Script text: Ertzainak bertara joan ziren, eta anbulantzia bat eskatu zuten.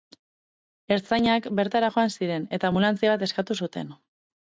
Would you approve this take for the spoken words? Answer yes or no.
yes